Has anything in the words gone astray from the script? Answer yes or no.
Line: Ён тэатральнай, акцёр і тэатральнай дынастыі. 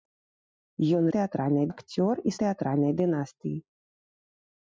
no